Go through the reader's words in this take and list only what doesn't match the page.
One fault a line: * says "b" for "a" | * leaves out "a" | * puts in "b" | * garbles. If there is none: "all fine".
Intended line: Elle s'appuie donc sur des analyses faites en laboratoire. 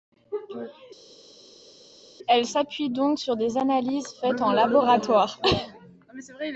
all fine